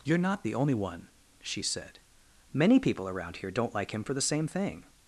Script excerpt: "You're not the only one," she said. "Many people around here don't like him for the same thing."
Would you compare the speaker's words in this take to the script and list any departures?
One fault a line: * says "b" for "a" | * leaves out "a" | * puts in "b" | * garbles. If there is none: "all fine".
all fine